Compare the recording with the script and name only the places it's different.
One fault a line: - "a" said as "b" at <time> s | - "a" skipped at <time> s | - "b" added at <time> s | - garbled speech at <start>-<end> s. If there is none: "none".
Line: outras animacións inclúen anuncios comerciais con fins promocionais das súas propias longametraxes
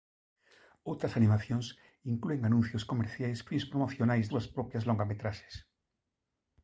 - "con" skipped at 3.4 s
- "das" skipped at 4.3 s